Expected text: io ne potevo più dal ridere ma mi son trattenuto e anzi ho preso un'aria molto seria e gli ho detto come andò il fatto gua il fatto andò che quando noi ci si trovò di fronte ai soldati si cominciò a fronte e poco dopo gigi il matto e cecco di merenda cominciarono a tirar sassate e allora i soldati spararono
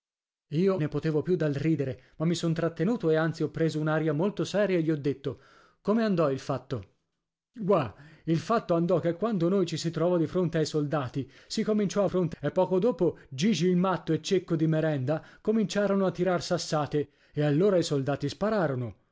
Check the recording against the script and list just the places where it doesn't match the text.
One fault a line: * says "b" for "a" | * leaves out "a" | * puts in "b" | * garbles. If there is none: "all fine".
all fine